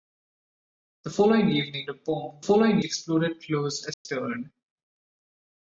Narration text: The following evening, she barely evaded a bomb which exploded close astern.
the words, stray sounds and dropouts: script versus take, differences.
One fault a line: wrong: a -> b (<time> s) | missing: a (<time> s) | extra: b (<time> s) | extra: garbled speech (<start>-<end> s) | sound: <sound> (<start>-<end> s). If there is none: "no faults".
missing: she barely evaded (1.9 s)
wrong: which -> following (2.4 s)
sound: dropout (3.9-4.1 s)